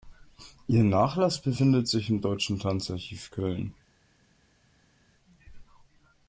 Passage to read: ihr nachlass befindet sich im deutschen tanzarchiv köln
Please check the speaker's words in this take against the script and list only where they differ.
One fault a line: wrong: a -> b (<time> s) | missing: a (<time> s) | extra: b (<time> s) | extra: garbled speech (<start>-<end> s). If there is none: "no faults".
no faults